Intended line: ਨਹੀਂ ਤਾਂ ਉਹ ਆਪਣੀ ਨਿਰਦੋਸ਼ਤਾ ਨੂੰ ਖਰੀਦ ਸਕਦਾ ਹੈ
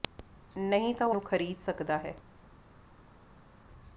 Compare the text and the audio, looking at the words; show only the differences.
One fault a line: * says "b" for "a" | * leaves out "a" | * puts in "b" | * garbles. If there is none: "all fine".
* leaves out "ਆਪਣੀ ਨਿਰਦੋਸ਼ਤਾ"